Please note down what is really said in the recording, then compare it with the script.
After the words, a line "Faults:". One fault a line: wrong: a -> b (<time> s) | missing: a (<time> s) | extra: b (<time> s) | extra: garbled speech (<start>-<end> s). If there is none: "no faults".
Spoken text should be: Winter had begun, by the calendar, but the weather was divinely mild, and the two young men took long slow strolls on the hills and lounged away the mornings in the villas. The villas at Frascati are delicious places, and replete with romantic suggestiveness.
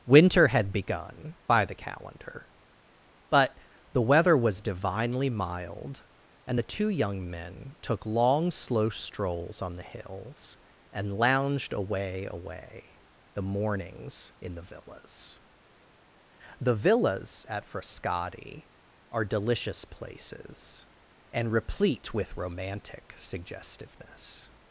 Winter had begun, by the calendar, but the weather was divinely mild, and the two young men took long slow strolls on the hills and lounged away away the mornings in the villas. The villas at Frascati are delicious places, and replete with romantic suggestiveness.
Faults:
extra: away (12.3 s)